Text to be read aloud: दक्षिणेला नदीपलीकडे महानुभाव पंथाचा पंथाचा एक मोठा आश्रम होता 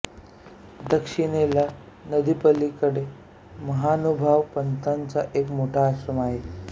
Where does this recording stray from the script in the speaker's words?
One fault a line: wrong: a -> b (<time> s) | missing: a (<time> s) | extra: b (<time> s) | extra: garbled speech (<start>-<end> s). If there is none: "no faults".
missing: पंथाचा (5.2 s)
wrong: होता -> आहे (6.2 s)